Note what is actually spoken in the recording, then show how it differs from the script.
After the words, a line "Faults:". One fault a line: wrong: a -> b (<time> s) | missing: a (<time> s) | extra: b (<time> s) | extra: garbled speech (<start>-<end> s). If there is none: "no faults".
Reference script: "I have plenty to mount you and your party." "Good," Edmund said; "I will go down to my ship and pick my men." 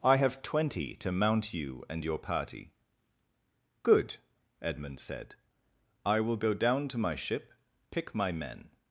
"I have twenty to mount you and your party." "Good," Edmund said; "I will go down to my ship pick my men."
Faults:
wrong: plenty -> twenty (0.4 s)
missing: and (7.5 s)